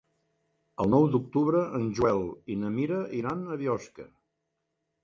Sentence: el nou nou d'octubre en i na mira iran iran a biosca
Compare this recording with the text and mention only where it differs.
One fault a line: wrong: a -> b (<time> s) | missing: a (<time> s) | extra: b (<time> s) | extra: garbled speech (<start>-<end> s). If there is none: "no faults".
missing: nou (1.1 s)
extra: joel (2.0 s)
missing: iran (3.4 s)